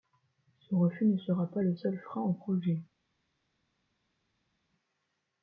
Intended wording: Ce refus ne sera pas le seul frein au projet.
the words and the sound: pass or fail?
pass